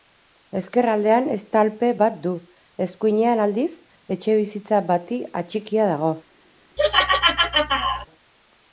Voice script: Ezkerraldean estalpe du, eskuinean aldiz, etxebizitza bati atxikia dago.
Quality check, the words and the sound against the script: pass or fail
fail